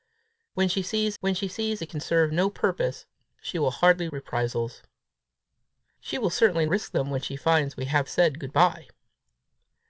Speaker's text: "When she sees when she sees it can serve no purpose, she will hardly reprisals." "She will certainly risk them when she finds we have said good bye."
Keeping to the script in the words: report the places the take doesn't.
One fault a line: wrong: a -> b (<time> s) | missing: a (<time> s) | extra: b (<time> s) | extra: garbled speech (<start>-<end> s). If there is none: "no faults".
no faults